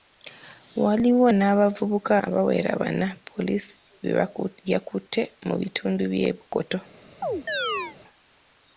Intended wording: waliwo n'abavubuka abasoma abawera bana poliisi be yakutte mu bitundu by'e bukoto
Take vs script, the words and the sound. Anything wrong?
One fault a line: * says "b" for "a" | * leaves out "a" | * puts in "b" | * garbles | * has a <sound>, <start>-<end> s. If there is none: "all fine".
* leaves out "abasoma"
* has a chirp, 7.2-8.0 s